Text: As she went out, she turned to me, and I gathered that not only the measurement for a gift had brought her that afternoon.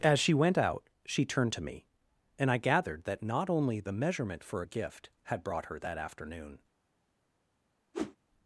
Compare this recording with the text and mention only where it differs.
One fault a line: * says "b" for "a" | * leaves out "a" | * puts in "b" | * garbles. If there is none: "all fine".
all fine